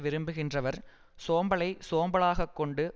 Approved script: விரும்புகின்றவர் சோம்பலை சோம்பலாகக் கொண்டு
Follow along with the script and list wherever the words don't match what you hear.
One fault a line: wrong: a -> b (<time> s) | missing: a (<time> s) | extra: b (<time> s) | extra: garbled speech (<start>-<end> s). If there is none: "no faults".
no faults